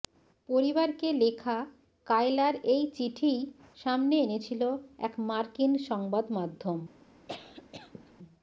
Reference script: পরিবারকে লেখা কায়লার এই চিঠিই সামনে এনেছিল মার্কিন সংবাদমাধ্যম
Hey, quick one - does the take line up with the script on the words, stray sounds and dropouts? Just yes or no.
no